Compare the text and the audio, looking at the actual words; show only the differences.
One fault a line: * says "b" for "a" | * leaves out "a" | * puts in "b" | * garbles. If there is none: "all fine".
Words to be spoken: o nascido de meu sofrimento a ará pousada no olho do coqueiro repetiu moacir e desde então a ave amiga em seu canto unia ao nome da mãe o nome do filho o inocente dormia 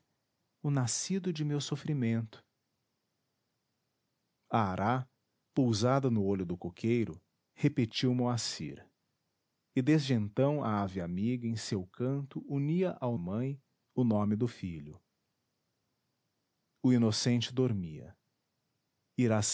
* leaves out "nome da"